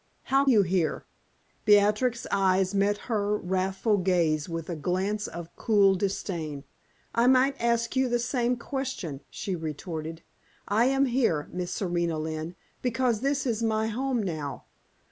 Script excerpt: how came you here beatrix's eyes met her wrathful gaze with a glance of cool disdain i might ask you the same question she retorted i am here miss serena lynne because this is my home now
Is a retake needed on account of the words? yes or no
yes